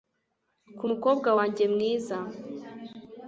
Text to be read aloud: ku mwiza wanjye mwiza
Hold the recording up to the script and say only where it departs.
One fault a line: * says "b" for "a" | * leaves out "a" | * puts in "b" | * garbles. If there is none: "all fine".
* says "mukobwa" for "mwiza"